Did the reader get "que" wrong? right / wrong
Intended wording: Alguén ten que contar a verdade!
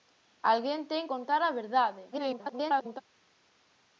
wrong